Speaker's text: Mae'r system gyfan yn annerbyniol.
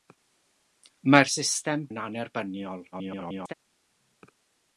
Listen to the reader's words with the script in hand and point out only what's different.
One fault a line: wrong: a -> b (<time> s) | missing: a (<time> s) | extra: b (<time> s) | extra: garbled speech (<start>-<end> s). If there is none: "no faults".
missing: gyfan (1.8 s)
extra: garbled speech (2.9-3.5 s)